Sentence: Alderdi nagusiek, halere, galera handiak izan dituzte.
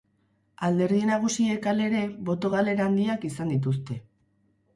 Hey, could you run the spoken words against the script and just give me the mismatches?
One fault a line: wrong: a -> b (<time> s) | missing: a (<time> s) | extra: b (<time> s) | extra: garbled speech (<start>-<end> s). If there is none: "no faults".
extra: boto (2.3 s)